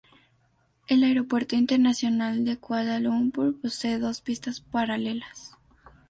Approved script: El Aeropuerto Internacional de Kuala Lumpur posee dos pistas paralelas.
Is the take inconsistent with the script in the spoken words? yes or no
no